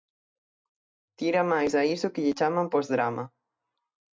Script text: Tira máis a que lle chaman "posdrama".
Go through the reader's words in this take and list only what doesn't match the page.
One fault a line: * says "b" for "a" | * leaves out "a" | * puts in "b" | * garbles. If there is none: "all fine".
* puts in "iso"